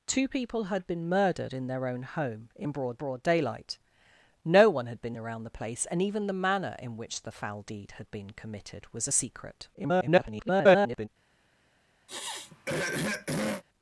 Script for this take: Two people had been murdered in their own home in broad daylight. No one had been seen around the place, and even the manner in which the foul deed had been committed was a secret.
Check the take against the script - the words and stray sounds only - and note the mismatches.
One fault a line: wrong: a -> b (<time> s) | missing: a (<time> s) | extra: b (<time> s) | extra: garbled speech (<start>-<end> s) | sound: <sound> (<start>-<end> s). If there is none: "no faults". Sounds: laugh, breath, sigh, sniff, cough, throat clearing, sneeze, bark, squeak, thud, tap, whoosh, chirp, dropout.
extra: broad (3.0 s)
missing: seen (5.2 s)
extra: garbled speech (9.7-11.1 s)
sound: throat clearing (12.1-13.6 s)